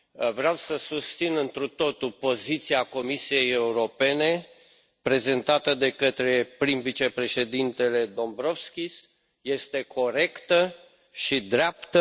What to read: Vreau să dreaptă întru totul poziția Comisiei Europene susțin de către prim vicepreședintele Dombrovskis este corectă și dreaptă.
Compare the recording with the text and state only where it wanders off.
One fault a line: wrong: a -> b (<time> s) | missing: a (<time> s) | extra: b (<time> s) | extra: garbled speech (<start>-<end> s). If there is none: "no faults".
wrong: dreaptă -> susțin (0.8 s)
wrong: susțin -> prezentată (5.0 s)